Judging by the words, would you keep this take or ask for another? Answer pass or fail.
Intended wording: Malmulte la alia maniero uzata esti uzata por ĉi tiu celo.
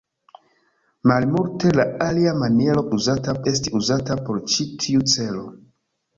pass